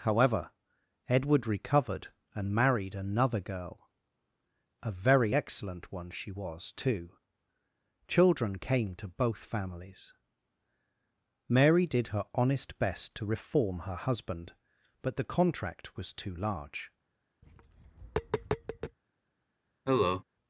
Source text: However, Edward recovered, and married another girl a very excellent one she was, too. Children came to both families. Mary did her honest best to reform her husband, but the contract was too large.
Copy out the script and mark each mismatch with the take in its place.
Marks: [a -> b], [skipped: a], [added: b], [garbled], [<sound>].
However, Edward recovered, and married another girl a very excellent one she was, too. Children came to both families. Mary did her honest best to reform her husband, but the contract was too large. [tap] [cough]